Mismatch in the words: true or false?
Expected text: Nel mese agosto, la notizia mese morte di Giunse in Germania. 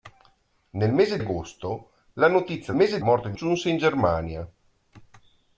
false